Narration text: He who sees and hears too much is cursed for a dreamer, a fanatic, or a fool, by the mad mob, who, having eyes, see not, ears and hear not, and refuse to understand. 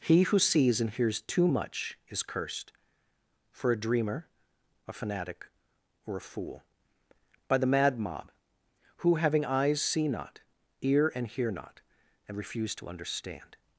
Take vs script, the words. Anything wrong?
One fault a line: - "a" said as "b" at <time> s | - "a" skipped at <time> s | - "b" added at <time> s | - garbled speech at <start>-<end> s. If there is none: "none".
- "ears" said as "ear" at 10.8 s